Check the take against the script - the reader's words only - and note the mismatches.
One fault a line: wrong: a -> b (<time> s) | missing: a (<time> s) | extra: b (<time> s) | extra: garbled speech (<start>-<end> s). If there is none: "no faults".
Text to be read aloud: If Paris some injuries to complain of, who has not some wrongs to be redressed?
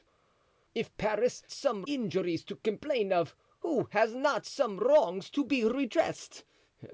no faults